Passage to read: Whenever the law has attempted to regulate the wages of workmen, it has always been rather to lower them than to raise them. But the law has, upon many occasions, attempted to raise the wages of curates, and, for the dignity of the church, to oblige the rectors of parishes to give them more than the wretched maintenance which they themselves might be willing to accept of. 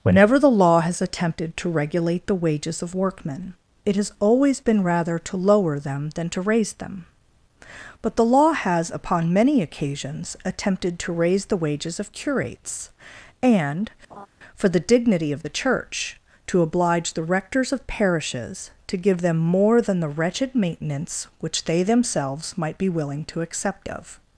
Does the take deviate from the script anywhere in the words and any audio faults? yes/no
yes